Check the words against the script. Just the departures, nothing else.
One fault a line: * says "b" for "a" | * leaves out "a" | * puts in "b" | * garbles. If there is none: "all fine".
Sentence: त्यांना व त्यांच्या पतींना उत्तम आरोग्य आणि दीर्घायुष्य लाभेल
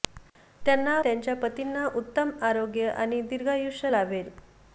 * leaves out "व"